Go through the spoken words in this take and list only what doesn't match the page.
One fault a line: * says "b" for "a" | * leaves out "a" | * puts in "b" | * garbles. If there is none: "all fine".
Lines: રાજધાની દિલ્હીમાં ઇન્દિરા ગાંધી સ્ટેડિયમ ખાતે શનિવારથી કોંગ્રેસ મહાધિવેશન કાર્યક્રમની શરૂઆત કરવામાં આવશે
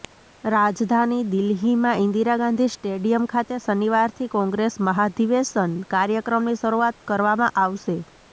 all fine